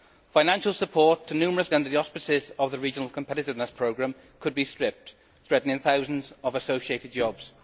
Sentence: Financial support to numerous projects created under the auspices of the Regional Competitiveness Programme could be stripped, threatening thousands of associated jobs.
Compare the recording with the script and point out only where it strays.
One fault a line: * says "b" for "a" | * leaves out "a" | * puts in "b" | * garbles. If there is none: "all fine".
* leaves out "projects created"